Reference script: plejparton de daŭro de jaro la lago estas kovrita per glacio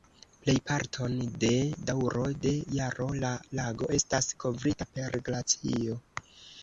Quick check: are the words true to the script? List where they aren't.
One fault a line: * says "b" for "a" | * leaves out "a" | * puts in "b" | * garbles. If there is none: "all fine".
all fine